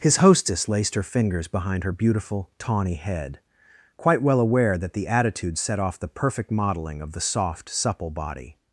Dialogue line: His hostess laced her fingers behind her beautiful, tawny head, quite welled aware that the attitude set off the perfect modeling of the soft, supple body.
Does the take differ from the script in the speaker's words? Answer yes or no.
yes